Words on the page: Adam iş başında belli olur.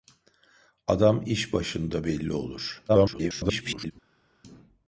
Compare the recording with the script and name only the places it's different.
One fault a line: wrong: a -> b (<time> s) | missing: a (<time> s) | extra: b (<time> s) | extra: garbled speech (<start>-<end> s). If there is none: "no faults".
extra: garbled speech (2.9-3.9 s)